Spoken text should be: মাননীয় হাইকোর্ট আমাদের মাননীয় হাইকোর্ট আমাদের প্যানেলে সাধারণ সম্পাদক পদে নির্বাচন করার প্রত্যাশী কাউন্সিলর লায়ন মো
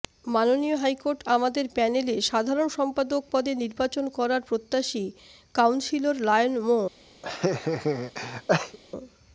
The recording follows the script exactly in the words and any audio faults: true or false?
false